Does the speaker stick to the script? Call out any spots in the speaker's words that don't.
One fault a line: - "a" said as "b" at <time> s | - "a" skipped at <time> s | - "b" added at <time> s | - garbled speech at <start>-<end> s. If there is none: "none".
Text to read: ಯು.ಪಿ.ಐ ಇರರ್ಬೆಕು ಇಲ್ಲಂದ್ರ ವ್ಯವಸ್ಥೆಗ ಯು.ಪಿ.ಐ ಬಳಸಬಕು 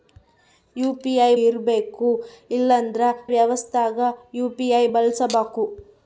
none